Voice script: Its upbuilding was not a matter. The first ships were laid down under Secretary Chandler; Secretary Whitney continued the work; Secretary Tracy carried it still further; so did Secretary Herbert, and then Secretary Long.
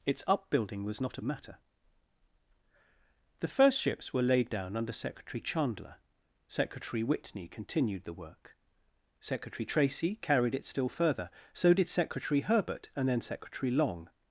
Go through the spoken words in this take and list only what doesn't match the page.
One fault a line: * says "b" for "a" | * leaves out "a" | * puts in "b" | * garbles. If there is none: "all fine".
all fine